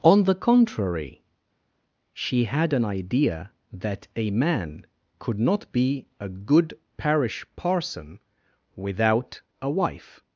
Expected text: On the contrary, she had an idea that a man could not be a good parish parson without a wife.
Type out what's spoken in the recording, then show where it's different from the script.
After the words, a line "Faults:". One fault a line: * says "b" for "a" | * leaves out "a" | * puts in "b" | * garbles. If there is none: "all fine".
On the contrary, she had an idea that a man could not be a good parish parson without a wife.
Faults:
all fine